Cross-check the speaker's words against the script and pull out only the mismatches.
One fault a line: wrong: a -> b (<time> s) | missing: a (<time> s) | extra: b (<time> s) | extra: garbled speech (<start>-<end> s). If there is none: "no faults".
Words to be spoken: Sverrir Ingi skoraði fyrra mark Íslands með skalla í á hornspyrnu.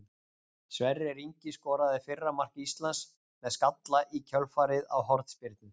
extra: kjölfarið (4.3 s)